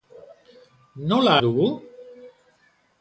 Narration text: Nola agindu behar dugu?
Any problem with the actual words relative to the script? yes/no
yes